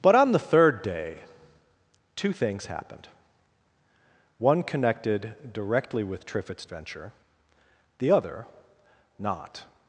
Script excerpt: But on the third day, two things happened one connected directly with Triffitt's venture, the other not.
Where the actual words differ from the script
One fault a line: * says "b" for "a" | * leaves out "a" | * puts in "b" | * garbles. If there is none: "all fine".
all fine